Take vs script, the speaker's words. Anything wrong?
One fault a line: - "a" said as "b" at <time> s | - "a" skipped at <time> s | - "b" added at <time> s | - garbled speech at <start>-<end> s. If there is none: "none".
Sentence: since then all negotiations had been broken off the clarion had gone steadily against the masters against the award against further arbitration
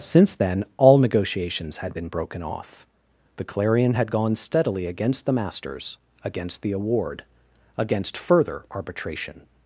none